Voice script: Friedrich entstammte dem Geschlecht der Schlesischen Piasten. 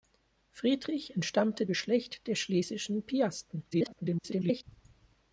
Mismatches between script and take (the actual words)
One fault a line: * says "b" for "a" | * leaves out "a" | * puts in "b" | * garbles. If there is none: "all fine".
* leaves out "dem"
* garbles